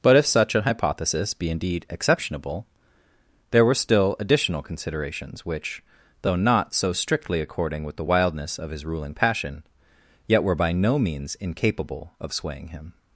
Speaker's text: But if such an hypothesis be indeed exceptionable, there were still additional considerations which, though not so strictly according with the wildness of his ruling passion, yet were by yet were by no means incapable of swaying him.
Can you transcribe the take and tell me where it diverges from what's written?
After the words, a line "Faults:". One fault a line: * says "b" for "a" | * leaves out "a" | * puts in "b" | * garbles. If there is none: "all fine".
But if such an hypothesis be indeed exceptionable, there were still additional considerations which, though not so strictly according with the wildness of his ruling passion, yet were by no means incapable of swaying him.
Faults:
* leaves out "yet were by"